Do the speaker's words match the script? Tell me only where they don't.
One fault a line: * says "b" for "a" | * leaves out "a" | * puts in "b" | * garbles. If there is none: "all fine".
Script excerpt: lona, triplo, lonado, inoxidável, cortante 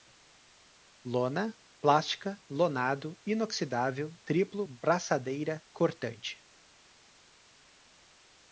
* says "plástica" for "triplo"
* puts in "triplo braçadeira"